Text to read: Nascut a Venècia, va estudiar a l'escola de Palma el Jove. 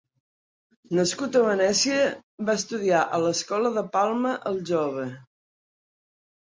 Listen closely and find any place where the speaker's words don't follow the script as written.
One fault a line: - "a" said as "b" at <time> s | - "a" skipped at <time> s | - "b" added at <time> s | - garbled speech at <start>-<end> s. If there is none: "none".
none